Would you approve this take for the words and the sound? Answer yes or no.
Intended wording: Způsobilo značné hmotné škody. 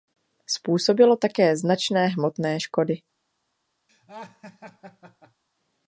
no